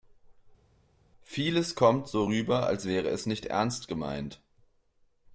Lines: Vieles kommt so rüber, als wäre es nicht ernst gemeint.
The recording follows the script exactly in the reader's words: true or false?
true